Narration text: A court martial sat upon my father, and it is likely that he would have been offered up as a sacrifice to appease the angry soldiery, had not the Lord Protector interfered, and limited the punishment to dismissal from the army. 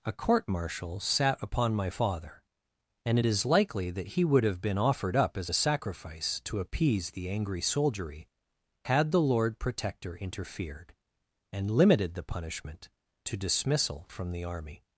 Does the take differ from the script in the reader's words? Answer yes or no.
yes